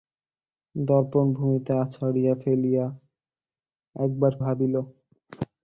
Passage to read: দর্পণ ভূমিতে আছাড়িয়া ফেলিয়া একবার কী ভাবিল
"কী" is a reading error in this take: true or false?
true